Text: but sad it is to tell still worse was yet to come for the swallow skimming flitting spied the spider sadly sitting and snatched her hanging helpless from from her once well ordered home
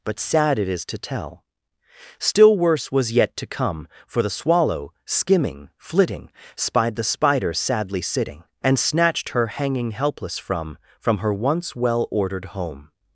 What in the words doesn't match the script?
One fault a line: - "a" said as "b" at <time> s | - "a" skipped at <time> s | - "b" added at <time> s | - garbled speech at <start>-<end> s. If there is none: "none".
none